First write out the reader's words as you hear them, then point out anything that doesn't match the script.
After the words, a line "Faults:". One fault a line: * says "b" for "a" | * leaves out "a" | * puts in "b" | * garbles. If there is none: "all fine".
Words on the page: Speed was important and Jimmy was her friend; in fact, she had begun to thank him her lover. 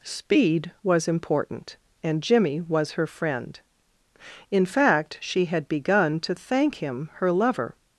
Speed was important and Jimmy was her friend; in fact, she had begun to thank him her lover.
Faults:
all fine